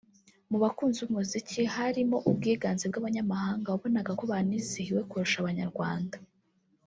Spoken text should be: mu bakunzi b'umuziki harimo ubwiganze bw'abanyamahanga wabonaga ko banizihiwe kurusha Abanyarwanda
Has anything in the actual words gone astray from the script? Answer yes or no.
no